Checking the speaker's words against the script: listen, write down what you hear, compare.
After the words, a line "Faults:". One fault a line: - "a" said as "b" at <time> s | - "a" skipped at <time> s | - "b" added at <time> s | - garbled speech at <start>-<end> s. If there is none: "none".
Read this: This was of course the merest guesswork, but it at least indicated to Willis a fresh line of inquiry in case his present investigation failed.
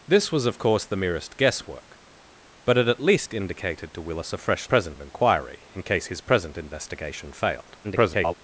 This was of course the merest guesswork, but it at least indicated to Willis a fresh present of inquiry in case his present investigation failed. [garbled]
Faults:
- "line" said as "present" at 4.6 s
- garbled speech at 7.8-8.3 s